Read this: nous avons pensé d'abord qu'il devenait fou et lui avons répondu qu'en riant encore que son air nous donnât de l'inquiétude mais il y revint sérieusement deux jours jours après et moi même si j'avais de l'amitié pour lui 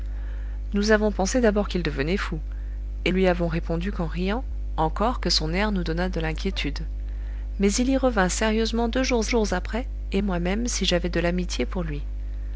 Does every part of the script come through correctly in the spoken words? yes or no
yes